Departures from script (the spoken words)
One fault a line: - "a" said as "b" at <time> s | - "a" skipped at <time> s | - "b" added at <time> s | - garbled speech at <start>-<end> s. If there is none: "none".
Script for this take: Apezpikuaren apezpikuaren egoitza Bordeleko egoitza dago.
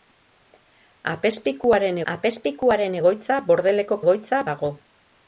none